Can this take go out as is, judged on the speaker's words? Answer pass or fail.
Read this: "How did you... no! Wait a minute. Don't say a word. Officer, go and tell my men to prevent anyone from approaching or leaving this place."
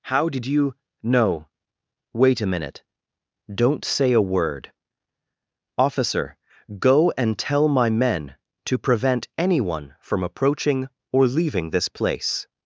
pass